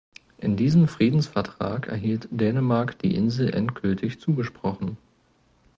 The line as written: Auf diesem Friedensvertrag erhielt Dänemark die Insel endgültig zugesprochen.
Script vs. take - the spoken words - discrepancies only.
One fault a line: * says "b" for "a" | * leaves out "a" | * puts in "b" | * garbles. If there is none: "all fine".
* says "In" for "Auf"